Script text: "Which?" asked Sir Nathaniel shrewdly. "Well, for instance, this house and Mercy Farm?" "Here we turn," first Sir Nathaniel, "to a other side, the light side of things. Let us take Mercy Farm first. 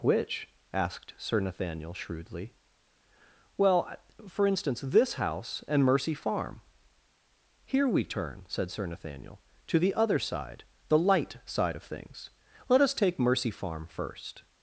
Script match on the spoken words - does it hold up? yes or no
no